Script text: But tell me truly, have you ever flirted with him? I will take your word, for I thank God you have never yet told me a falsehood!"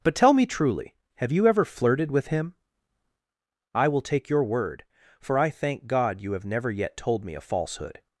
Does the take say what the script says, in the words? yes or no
yes